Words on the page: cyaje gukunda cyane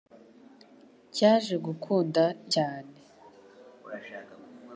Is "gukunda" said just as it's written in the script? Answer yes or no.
yes